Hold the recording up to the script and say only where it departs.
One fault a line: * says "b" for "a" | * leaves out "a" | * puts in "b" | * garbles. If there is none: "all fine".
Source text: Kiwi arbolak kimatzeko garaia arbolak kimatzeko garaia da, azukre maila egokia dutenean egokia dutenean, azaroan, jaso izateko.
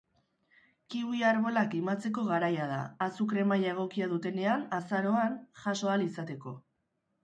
* leaves out "arbolak kimatzeko garaia"
* leaves out "egokia dutenean"
* puts in "ahal"